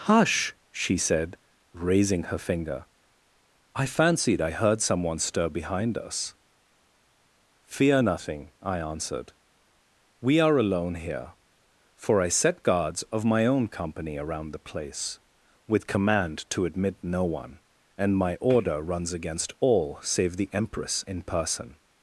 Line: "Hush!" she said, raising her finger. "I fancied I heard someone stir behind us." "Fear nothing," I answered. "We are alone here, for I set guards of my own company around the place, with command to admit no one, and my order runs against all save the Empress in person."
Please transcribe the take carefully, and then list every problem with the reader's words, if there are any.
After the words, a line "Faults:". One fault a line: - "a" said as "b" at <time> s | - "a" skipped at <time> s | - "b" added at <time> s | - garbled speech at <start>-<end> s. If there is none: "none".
"Hush!" she said, raising her finger. "I fancied I heard someone stir behind us." "Fear nothing," I answered. "We are alone here, for I set guards of my own company around the place, with command to admit no one, and my order runs against all save the Empress in person."
Faults:
none